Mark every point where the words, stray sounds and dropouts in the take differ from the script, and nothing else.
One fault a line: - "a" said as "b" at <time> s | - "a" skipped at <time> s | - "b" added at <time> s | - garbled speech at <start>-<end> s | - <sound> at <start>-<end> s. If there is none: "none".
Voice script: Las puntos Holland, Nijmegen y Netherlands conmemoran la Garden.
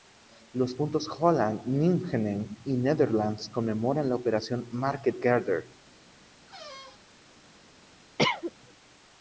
- "Las" said as "Los" at 0.5 s
- "Operación Market" added at 4.1 s
- squeak at 6.5-7.0 s
- cough at 8.2-8.5 s